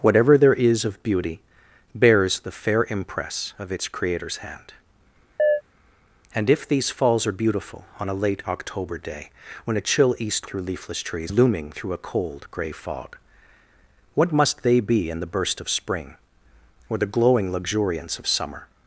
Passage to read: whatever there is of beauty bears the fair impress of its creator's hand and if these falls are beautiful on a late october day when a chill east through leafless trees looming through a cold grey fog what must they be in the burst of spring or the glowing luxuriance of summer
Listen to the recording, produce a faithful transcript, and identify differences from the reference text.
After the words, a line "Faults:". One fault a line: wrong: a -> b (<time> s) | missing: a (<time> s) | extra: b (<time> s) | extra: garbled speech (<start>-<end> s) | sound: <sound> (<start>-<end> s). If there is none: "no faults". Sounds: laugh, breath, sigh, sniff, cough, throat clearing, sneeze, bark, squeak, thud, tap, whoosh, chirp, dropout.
whatever there is of beauty bears the fair impress of its creator's hand and if these falls are beautiful on a late october day when a chill east through leafless trees looming through a cold grey fog what must they be in the burst of spring or the glowing luxuriance of summer
Faults:
sound: chirp (5.4-5.6 s)